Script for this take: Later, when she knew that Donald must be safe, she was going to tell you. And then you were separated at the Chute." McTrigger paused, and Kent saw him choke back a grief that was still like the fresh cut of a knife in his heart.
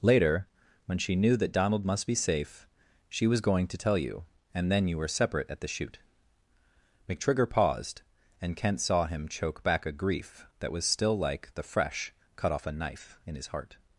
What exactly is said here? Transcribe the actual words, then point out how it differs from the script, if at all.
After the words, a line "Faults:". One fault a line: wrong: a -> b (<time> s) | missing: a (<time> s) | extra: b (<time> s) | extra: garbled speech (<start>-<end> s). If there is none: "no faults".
Later, when she knew that Donald must be safe, she was going to tell you. And then you were separate at the Chute." McTrigger paused, and Kent saw him choke back a grief that was still like the fresh cut off a knife in his heart.
Faults:
wrong: separated -> separate (5.1 s)
wrong: of -> off (12.5 s)